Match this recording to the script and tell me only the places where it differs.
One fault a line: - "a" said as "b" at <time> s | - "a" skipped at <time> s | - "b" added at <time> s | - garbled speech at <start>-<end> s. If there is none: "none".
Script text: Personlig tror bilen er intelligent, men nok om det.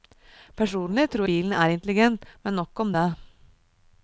none